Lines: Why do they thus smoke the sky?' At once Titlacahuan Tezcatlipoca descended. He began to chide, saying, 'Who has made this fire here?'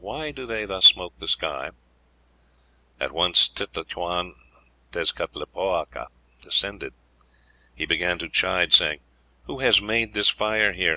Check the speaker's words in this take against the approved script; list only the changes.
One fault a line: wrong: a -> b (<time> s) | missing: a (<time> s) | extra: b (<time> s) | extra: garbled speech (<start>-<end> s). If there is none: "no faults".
no faults